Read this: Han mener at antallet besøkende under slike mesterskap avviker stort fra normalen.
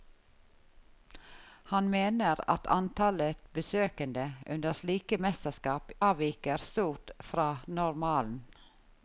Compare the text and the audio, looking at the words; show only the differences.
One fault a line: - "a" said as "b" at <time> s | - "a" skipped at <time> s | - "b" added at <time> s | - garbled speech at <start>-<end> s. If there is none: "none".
none